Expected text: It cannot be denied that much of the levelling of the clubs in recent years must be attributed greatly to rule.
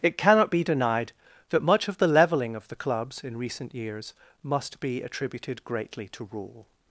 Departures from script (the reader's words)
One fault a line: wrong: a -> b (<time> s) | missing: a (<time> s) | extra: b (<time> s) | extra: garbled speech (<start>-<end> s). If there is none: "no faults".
no faults